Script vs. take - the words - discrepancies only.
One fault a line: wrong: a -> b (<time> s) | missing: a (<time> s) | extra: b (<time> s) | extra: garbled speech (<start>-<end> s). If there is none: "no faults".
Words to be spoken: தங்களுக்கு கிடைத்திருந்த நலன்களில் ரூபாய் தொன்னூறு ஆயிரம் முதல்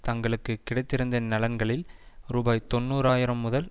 no faults